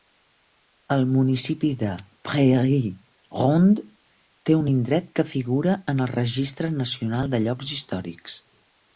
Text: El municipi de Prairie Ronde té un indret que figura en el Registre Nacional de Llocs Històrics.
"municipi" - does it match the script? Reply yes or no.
yes